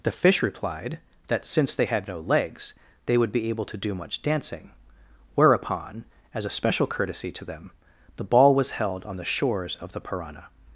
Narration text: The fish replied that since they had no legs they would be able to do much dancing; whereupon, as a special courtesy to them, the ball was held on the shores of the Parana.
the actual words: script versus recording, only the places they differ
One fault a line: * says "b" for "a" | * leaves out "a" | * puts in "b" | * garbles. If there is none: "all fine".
all fine